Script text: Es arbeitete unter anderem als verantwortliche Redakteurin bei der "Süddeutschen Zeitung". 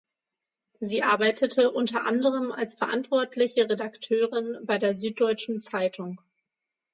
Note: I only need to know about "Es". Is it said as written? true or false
false